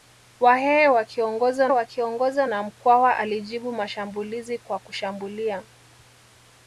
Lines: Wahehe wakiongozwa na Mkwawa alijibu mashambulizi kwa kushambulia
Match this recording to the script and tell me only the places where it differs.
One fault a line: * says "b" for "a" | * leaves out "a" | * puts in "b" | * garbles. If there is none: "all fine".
* puts in "wakiongozwa"